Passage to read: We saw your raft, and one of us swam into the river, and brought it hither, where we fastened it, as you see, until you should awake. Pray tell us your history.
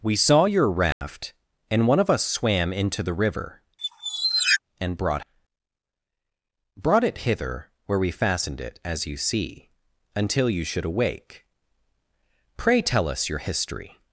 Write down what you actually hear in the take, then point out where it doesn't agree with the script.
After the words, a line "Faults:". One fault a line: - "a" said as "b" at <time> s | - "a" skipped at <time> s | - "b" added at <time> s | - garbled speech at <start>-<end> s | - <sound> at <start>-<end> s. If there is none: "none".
We saw your raft, and one of us swam into the river, and brought brought it hither, where we fastened it, as you see, until you should awake. Pray tell us your history.
Faults:
- dropout at 0.9-1.0 s
- squeak at 3.8-4.6 s
- "brought" added at 6.7 s